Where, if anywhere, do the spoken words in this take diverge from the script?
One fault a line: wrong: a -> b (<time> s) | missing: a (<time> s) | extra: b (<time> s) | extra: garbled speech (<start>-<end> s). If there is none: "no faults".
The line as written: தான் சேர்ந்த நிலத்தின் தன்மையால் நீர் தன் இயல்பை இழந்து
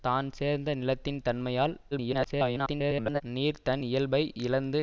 extra: garbled speech (1.9-3.2 s)